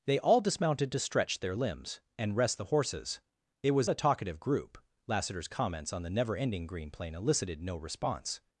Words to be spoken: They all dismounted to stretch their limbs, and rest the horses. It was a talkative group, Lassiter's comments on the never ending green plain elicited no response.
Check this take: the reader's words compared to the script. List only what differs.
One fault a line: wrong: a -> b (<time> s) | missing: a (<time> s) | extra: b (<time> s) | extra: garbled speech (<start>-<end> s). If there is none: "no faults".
no faults